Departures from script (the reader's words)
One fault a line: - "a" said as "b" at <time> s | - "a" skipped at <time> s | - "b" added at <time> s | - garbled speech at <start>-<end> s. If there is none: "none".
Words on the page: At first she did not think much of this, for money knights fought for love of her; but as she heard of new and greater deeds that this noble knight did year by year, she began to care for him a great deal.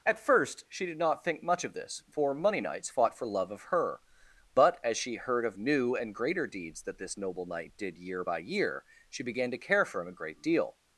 none